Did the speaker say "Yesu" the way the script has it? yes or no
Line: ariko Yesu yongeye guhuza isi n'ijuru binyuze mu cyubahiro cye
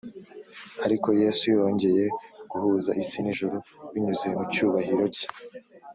yes